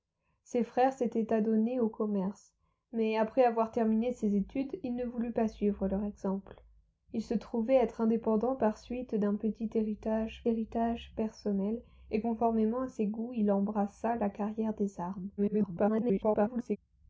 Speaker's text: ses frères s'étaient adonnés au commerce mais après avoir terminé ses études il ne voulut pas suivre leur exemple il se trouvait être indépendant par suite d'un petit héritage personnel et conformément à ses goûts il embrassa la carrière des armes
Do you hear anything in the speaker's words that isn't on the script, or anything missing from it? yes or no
yes